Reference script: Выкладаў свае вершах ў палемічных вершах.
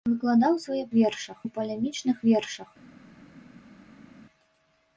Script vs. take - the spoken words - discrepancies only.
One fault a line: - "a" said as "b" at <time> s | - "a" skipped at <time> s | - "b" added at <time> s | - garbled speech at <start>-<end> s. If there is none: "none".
none